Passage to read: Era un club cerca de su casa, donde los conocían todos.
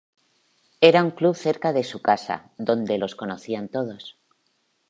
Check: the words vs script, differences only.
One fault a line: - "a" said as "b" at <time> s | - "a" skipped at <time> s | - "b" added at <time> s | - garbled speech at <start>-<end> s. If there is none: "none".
none